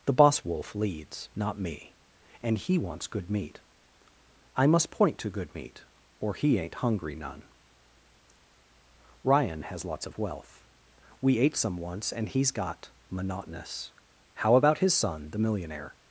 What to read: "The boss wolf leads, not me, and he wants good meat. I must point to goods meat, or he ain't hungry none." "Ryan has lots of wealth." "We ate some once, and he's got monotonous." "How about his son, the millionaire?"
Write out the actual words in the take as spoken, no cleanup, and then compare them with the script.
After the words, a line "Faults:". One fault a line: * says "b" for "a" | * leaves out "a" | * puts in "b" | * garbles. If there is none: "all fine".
"The boss wolf leads, not me, and he wants good meat. I must point to good meat, or he ain't hungry none." "Ryan has lots of wealth." "We ate some once, and he's got monotonous." "How about his son, the millionaire?"
Faults:
* says "good" for "goods"